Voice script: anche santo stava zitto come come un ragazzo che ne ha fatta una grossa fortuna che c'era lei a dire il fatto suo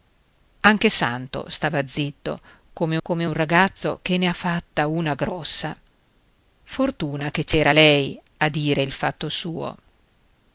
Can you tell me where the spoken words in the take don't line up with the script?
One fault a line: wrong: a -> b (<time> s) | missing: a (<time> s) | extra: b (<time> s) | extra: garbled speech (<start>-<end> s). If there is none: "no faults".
no faults